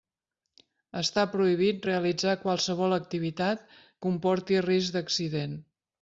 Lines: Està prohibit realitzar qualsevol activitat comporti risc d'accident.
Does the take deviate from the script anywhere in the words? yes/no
no